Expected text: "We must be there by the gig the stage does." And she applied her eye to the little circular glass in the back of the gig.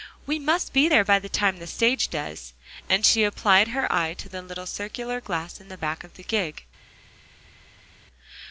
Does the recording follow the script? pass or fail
fail